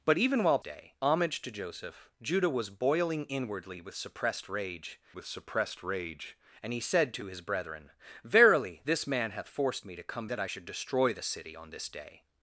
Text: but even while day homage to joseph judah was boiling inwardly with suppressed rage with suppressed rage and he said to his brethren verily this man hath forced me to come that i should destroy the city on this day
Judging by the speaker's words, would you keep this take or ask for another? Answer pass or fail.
pass